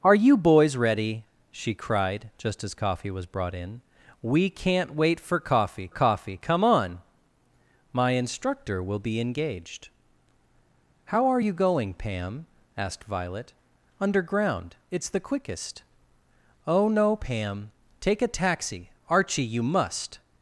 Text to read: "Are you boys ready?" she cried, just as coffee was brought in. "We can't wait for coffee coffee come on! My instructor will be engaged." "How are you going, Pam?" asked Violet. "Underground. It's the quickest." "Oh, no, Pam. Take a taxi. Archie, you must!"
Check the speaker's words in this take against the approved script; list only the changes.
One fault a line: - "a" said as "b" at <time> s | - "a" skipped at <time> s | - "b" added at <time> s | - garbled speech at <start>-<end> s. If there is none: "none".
none